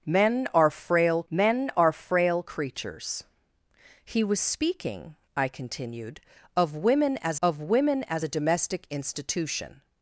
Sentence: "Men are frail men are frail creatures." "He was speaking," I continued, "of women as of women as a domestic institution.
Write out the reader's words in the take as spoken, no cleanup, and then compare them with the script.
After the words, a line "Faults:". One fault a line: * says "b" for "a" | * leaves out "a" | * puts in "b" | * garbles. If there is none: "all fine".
"Men are frail men are frail creatures." "He was speaking," I continued, "of women as of women as a domestic institution.
Faults:
all fine